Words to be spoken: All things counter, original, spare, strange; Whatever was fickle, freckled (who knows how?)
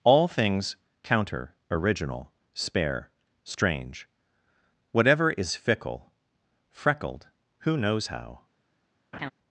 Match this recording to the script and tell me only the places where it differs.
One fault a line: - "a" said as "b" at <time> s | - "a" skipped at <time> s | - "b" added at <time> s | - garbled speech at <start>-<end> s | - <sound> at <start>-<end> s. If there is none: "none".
- "was" said as "is" at 5.3 s
- laugh at 9.1-9.3 s